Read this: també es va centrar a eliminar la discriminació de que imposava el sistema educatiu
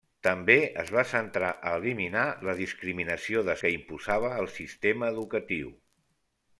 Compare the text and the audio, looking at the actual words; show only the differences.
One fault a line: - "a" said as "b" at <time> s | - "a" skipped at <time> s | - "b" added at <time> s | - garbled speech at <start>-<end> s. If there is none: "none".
none